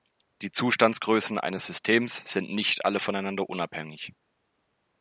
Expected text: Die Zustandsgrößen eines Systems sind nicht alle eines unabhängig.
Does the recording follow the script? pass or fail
fail